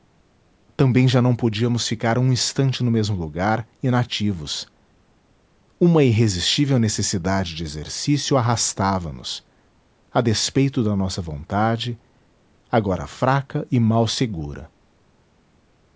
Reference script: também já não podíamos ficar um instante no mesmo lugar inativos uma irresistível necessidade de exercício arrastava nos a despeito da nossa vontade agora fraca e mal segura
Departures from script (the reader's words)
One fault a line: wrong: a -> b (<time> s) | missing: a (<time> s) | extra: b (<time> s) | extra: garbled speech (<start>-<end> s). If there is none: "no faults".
no faults